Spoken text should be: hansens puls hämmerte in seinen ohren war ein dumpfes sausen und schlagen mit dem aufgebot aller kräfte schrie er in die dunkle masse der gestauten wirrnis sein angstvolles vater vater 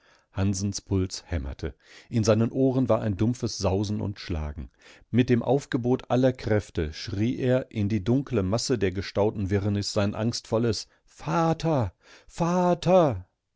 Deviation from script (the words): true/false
false